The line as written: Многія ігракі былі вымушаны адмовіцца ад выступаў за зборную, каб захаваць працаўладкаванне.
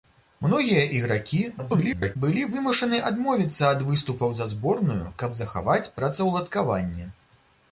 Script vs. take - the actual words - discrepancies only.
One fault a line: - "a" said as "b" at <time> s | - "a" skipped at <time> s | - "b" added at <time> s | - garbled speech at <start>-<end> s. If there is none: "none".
- garbled speech at 1.6-2.2 s